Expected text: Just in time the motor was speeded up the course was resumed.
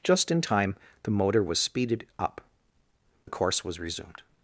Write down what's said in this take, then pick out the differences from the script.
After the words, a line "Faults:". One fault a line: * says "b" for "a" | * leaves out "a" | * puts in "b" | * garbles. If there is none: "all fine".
Just in time the motor was speeded up the course was resumed.
Faults:
all fine